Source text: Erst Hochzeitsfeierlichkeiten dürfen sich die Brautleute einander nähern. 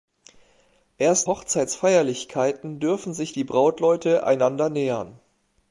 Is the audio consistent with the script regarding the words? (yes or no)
yes